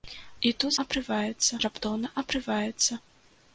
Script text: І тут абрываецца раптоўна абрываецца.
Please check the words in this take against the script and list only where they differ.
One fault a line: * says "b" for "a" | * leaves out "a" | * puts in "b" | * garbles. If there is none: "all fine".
all fine